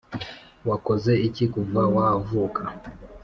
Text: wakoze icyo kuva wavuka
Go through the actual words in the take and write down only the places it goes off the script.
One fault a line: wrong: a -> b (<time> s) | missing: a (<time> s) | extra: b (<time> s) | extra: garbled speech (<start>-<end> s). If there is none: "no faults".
wrong: icyo -> iki (1.3 s)